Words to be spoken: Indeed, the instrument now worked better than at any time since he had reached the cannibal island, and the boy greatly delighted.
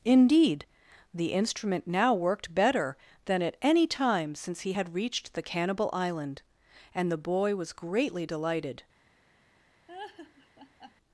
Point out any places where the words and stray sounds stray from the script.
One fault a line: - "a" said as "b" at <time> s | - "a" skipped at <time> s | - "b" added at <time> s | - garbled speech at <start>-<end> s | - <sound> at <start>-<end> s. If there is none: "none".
- "was" added at 7.6 s
- laugh at 9.9-11.0 s